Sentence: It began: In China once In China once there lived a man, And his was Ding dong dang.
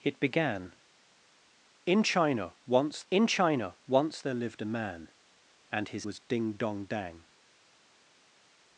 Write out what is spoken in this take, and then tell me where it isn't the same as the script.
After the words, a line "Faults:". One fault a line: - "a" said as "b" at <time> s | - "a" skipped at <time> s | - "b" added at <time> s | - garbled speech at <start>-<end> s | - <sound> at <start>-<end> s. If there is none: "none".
It began: In China once In China once there lived a man, And his was Ding dong dang.
Faults:
none